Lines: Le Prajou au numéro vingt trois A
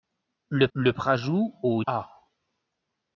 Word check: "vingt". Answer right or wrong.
wrong